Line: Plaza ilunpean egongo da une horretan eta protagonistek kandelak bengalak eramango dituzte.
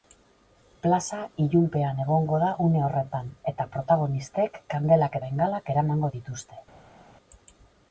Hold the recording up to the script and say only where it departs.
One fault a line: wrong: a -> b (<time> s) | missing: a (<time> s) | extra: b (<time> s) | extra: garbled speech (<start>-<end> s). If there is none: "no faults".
no faults